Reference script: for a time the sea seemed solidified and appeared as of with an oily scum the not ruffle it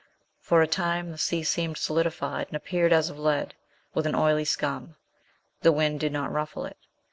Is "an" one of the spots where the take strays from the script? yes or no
no